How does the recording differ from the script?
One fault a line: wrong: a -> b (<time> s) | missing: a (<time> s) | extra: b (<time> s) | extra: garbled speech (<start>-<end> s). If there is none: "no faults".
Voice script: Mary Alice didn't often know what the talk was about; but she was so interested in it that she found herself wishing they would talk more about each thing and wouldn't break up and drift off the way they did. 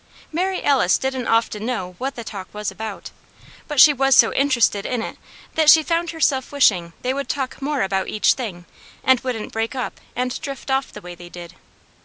no faults